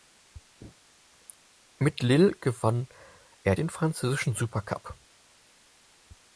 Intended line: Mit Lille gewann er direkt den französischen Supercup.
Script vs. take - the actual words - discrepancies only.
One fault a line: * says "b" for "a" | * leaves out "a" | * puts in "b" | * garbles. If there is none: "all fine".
* leaves out "direkt"